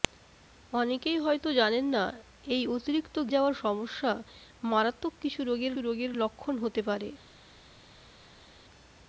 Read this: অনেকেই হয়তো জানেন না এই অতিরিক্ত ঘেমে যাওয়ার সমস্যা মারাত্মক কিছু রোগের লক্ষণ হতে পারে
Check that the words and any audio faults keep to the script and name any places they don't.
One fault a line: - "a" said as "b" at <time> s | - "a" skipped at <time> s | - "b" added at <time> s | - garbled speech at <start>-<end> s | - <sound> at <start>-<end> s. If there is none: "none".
- "ঘেমে" skipped at 3.2 s
- "রোগের" added at 5.8 s